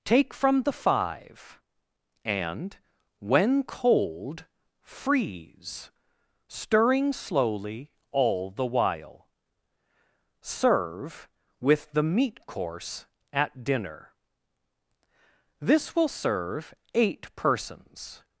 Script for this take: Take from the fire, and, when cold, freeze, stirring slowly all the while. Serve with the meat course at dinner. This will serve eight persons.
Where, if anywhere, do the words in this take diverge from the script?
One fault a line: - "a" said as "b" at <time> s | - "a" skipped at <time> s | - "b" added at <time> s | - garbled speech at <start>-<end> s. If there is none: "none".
- "fire" said as "five" at 0.7 s